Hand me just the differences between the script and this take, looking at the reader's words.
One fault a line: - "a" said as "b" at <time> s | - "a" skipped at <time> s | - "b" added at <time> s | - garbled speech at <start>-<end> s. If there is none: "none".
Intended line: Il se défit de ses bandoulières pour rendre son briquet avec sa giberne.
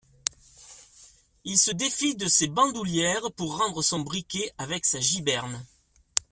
none